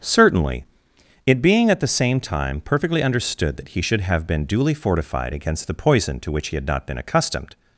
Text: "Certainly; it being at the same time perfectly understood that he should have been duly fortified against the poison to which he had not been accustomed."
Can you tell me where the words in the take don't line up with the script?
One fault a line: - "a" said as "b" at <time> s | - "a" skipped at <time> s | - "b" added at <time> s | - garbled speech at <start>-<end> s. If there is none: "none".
none